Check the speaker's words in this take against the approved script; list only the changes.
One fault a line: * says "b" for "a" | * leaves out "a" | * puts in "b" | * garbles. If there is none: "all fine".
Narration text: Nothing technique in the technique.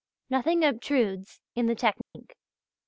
* says "obtrudes" for "technique"